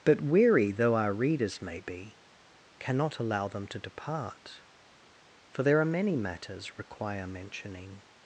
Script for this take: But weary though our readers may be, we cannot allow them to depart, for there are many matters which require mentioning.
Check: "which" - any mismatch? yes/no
yes